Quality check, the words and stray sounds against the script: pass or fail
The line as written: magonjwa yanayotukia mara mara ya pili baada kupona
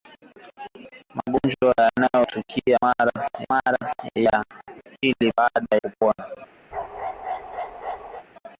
fail